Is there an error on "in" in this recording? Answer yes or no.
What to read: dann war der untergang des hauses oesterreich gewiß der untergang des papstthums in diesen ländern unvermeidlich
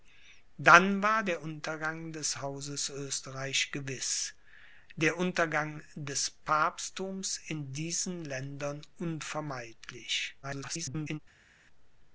no